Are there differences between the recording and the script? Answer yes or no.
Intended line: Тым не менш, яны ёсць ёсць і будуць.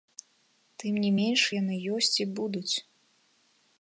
yes